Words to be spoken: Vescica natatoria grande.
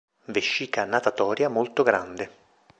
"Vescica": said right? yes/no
yes